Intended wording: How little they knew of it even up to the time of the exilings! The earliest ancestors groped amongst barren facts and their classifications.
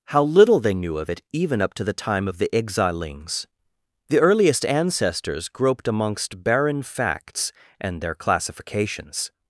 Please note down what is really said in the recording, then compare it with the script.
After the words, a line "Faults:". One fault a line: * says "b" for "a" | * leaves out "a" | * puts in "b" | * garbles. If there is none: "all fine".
How little they knew of it even up to the time of the exilings! The earliest ancestors groped amongst barren facts and their classifications.
Faults:
all fine